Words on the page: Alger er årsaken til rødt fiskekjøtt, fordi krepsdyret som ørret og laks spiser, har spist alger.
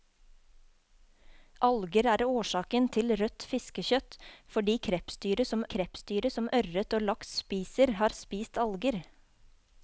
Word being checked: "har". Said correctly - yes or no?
yes